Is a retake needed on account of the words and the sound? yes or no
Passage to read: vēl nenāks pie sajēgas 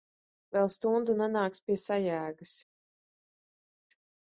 yes